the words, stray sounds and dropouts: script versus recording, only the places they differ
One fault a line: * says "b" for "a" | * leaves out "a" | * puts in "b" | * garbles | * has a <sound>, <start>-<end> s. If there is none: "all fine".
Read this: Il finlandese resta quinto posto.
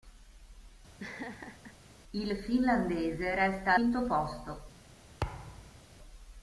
* has a laugh, 1.0-1.8 s
* has a thud, 5.2-5.9 s